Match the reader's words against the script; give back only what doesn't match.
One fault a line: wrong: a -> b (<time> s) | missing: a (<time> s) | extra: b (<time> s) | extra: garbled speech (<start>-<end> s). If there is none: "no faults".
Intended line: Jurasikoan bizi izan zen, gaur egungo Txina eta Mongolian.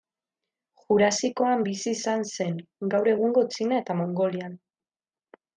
no faults